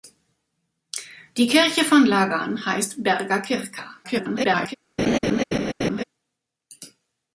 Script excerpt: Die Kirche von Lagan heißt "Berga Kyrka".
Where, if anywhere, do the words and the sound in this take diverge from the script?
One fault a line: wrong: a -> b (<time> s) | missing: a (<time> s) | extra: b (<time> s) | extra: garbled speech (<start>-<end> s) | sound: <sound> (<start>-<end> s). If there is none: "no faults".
extra: garbled speech (4.0-4.7 s)
sound: laugh (5.0-6.0 s)